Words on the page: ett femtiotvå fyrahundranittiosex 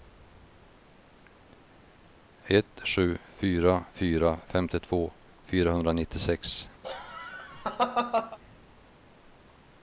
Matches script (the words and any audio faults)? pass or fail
fail